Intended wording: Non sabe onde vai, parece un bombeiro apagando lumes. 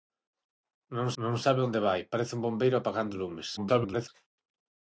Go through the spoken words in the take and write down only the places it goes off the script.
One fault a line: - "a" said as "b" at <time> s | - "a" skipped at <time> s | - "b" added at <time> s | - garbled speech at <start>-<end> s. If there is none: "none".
- "non" added at 1.2 s
- garbled speech at 3.6-4.1 s